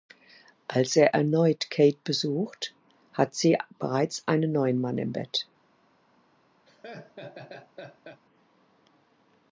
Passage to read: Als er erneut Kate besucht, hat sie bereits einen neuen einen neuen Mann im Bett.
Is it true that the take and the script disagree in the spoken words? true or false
true